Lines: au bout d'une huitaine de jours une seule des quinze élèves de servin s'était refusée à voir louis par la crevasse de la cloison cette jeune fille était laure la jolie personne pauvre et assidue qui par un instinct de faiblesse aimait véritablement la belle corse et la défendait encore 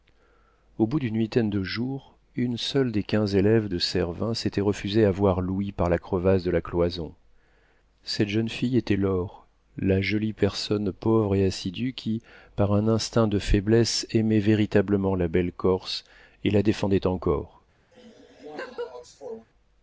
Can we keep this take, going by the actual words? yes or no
yes